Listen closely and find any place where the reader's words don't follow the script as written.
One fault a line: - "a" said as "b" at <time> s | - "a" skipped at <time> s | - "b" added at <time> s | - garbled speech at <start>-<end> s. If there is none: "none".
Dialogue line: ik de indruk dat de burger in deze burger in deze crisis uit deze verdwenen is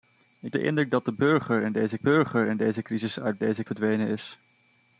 none